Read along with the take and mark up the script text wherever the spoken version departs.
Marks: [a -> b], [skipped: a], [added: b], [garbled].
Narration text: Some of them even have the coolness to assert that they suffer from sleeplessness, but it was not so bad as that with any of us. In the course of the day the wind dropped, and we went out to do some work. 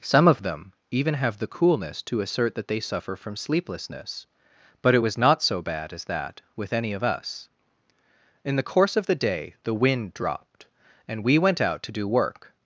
Some of them even have the coolness to assert that they suffer from sleeplessness, but it was not so bad as that with any of us. In the course of the day the wind dropped, and we went out to do [skipped: some] work.